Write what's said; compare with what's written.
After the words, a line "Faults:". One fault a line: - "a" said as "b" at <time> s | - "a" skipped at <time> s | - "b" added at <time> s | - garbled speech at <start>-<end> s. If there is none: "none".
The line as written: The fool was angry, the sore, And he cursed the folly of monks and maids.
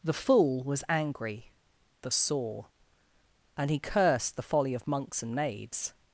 The fool was angry, the sore, And he cursed the folly of monks and maids.
Faults:
none